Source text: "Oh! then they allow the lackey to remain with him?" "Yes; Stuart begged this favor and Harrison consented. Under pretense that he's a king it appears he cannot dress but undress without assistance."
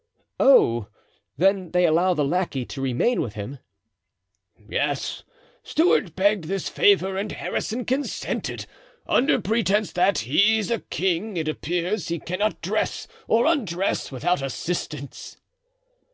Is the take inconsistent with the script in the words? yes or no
yes